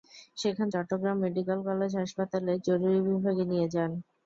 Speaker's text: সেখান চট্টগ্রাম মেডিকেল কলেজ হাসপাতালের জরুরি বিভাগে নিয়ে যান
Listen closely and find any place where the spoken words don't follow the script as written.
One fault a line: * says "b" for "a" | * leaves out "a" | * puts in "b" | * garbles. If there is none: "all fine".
all fine